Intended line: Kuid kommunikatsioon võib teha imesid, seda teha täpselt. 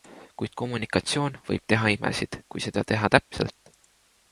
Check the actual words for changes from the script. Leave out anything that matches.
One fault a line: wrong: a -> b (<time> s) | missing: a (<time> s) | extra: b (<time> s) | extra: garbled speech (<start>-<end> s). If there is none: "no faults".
extra: kui (2.5 s)